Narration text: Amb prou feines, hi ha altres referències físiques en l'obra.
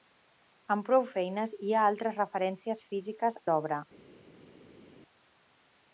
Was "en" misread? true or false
true